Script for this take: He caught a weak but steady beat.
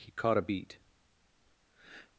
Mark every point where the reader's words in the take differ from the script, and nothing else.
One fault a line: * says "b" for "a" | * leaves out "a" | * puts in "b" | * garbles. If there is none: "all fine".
* leaves out "weak but steady"